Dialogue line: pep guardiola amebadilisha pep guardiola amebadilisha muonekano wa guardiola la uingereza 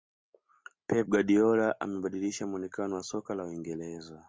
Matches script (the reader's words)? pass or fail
fail